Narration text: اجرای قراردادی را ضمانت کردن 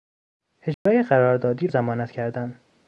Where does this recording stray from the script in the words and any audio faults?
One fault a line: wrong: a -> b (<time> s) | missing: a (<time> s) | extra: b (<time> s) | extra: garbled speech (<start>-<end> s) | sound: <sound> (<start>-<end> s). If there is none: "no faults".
sound: dropout (0.7-0.9 s)
missing: را (1.7 s)